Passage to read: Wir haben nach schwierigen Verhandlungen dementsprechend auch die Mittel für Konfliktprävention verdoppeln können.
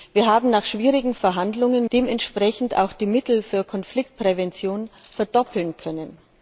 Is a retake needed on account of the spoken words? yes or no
no